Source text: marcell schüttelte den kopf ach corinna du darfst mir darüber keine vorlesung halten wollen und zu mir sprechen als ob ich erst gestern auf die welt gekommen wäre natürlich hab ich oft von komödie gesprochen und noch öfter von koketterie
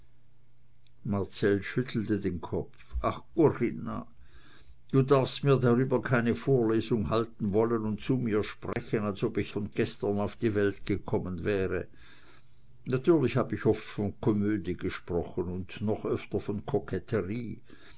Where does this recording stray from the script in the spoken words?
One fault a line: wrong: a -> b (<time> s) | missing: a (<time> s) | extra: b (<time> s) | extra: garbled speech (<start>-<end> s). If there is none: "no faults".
wrong: erst -> von (9.5 s)